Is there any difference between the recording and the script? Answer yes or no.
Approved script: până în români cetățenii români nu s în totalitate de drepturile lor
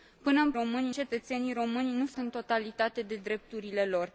no